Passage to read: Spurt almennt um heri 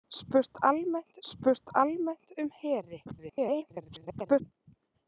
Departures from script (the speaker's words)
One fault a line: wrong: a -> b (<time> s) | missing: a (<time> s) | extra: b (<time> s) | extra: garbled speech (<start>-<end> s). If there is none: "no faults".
extra: spurt almennt (1.3 s)
extra: garbled speech (3.1-4.4 s)